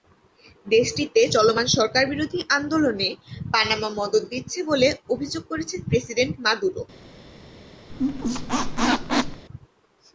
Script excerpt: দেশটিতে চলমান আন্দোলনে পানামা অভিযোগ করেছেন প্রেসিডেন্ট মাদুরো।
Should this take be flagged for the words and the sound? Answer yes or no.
yes